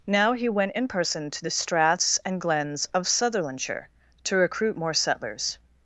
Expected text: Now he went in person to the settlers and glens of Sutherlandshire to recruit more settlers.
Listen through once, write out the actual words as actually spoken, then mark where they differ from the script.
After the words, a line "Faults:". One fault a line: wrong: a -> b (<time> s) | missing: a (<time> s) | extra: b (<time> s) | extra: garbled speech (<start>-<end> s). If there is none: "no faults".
Now he went in person to the straths and glens of Sutherlandshire to recruit more settlers.
Faults:
wrong: settlers -> straths (1.5 s)